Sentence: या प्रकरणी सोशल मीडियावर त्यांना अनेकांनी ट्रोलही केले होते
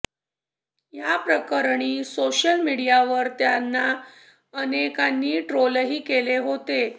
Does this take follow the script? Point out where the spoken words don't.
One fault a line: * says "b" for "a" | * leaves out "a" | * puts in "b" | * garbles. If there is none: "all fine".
all fine